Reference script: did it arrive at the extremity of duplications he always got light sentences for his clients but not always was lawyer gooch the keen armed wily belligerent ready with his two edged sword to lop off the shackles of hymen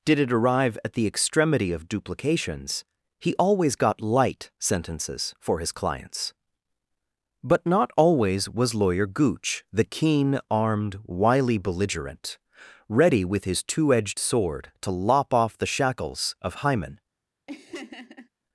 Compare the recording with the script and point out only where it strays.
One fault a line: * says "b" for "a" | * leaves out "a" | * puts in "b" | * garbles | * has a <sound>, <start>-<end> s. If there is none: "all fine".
* has a laugh, 17.5-18.3 s